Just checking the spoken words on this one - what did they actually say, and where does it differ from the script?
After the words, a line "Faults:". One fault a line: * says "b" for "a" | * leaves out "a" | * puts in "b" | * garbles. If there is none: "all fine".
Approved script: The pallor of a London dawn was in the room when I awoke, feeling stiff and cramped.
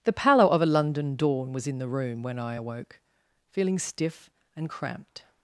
The pallor of a London dawn was in the room when I awoke, feeling stiff and cramped.
Faults:
all fine